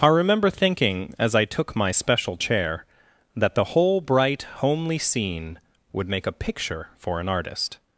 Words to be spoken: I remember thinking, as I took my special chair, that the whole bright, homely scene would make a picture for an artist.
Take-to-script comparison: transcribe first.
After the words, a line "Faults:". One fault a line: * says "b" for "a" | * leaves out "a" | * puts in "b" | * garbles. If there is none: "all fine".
I remember thinking, as I took my special chair, that the whole bright, homely scene would make a picture for an artist.
Faults:
all fine